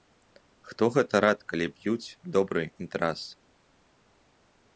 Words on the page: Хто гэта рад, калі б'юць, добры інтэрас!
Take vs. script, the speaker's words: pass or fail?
pass